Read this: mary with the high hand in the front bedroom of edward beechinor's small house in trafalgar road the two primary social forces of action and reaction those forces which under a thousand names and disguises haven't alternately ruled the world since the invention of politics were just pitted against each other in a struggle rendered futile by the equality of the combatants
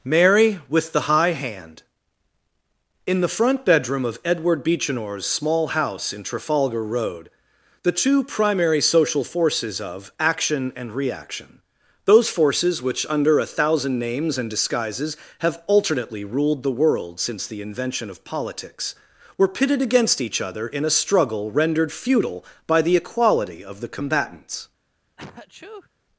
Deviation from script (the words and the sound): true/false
true